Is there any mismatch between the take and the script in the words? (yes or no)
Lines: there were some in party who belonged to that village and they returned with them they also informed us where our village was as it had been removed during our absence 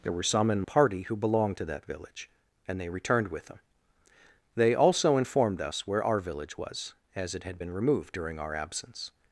no